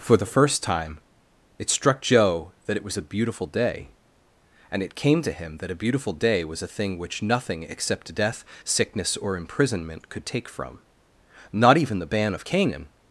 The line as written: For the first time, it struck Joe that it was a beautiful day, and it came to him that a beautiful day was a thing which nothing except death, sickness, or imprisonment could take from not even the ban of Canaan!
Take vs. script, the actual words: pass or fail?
pass